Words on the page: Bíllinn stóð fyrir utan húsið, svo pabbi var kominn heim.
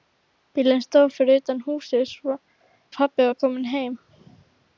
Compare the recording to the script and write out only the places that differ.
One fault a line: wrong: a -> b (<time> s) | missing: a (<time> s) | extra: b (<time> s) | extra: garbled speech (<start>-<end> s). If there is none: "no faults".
missing: svo (2.1 s)